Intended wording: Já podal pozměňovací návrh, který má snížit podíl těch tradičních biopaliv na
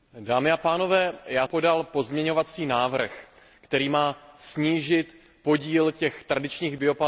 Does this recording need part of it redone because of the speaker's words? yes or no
no